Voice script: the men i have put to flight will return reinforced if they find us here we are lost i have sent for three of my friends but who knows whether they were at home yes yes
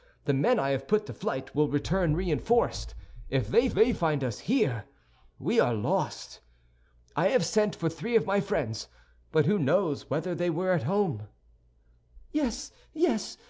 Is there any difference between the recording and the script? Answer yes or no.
yes